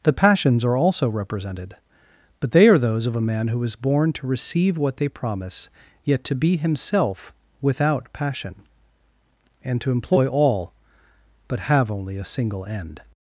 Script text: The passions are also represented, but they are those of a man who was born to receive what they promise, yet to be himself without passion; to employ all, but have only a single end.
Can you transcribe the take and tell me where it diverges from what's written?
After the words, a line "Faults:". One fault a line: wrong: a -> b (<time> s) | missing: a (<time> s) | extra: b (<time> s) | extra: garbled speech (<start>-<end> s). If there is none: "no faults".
The passions are also represented, but they are those of a man who is born to receive what they promise, yet to be himself without passion; and to employ all, but have only a single end.
Faults:
wrong: was -> is (3.6 s)
extra: and (9.6 s)